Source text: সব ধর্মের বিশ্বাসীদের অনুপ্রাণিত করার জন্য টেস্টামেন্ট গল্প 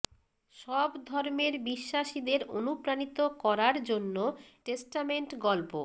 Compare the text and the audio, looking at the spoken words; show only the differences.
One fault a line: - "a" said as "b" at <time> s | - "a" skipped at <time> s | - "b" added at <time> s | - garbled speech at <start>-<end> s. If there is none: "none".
none